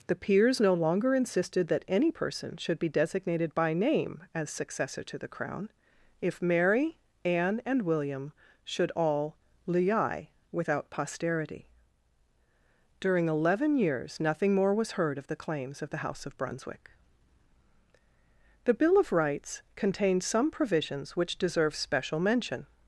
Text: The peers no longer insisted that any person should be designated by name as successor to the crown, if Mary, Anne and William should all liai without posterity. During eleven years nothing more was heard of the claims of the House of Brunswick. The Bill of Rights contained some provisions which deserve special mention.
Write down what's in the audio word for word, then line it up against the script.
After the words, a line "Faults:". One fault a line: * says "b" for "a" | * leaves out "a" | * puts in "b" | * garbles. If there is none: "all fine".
The peers no longer insisted that any person should be designated by name as successor to the crown, if Mary, Anne and William should all liai without posterity. During eleven years nothing more was heard of the claims of the House of Brunswick. The Bill of Rights contained some provisions which deserve special mention.
Faults:
all fine